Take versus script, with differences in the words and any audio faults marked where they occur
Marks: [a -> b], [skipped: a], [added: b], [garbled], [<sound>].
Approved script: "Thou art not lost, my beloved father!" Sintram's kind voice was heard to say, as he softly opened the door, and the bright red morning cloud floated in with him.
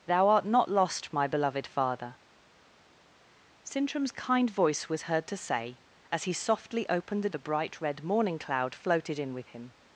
"Thou art not lost, my beloved father!" Sintram's kind voice was heard to say, as he softly opened the [skipped: door, and] the bright red morning cloud floated in with him.